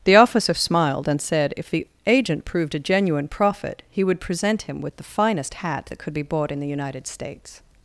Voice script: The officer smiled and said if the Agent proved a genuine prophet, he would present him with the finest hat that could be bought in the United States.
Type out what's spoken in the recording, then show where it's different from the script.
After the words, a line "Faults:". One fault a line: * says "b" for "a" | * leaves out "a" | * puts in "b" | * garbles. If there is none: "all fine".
The officer smiled and said if the Agent proved a genuine prophet, he would present him with the finest hat that could be bought in the United States.
Faults:
all fine